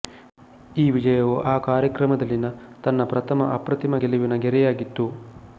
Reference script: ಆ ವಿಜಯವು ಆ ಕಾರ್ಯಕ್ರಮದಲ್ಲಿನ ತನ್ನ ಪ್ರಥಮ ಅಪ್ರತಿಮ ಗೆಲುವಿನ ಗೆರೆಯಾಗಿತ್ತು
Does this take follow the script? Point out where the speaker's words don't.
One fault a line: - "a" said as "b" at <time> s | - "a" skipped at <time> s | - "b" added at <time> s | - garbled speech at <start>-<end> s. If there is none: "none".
- "ಆ" said as "ಈ" at 0.8 s